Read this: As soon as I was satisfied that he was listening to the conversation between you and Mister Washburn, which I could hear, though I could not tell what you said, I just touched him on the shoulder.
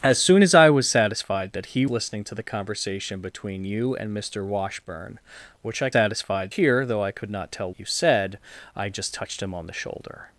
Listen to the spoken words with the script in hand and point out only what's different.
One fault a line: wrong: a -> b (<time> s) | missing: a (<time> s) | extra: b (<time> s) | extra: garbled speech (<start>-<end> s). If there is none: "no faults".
missing: was (1.9 s)
wrong: could -> satisfied (5.9 s)
missing: what (7.7 s)